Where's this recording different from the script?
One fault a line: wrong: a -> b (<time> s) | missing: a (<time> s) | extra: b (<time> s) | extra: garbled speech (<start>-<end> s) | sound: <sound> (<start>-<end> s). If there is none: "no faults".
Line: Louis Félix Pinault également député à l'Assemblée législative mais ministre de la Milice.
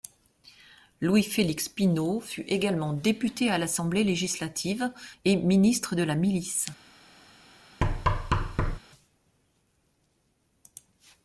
extra: fut (2.2 s)
wrong: mais -> et (5.2 s)
sound: thud (7.8-8.8 s)